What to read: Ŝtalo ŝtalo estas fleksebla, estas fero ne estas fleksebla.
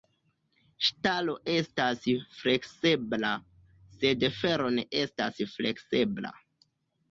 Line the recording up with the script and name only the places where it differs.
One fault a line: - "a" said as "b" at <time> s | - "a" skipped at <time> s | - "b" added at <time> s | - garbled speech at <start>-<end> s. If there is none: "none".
- "ŝtalo" skipped at 1.4 s
- "estas" said as "sed" at 4.0 s